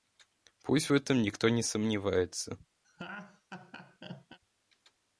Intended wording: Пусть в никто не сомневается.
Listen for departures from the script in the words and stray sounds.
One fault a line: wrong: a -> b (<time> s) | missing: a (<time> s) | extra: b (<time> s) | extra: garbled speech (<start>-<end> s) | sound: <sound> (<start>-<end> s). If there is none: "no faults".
extra: этом (0.9 s)
sound: laugh (2.8-4.4 s)